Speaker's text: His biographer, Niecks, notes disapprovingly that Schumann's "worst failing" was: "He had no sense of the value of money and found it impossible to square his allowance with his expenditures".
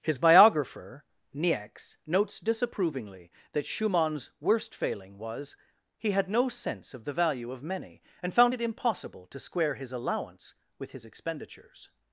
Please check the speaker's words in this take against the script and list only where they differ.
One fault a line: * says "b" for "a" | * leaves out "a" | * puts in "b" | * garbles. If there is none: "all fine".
* says "many" for "money"